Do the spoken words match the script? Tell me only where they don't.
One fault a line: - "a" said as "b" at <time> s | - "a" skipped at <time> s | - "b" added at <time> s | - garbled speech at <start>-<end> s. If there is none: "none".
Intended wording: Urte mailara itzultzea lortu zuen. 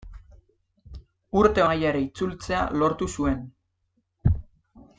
none